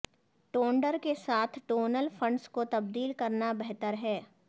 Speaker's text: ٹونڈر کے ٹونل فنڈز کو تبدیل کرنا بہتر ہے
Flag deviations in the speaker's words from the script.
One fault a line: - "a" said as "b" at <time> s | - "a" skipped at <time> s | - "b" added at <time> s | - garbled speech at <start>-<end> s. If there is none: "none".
- "ساتھ" added at 1.1 s